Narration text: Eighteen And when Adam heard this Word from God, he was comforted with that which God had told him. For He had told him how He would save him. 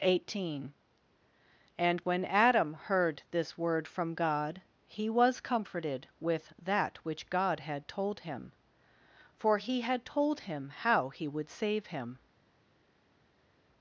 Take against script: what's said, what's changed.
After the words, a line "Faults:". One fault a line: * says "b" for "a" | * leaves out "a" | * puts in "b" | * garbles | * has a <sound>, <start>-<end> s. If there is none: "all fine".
Eighteen And when Adam heard this Word from God, he was comforted with that which God had told him. For He had told him how He would save him.
Faults:
all fine